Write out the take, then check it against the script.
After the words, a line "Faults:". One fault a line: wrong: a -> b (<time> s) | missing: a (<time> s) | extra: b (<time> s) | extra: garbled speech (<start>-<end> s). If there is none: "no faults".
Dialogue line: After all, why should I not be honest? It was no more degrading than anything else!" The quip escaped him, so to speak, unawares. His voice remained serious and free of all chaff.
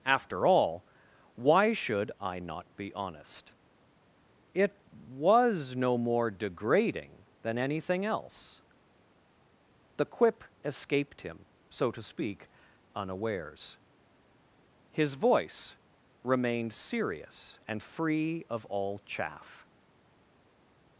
After all, why should I not be honest? It was no more degrading than anything else!" The quip escaped him, so to speak, unawares. His voice remained serious and free of all chaff.
Faults:
no faults